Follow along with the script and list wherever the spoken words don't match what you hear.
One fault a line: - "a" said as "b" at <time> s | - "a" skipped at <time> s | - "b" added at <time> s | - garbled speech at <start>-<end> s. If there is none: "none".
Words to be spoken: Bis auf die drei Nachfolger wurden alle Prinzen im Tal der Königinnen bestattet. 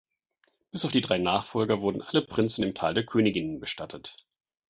none